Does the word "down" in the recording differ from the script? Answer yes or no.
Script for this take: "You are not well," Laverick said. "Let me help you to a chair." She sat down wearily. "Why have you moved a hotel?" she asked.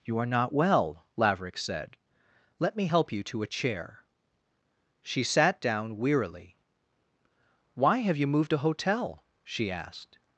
no